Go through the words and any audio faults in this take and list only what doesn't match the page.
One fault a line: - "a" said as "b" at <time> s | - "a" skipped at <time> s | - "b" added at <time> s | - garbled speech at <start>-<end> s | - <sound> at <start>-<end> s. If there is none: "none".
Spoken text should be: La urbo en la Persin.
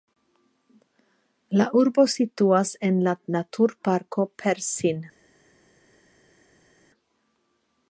- "situas" added at 2.1 s
- "Naturparko" added at 3.4 s